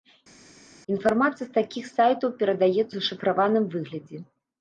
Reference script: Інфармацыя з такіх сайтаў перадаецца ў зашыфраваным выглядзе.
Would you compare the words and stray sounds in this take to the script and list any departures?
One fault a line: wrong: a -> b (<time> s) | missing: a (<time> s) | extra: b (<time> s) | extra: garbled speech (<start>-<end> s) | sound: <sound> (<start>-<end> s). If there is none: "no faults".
missing: ў (2.9 s)